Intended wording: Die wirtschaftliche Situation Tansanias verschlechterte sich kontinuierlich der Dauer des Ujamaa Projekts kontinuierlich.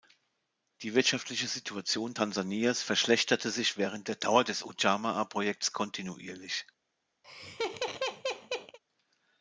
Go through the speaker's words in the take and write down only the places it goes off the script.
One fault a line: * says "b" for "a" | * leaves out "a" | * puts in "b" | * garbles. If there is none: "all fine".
* says "während" for "kontinuierlich"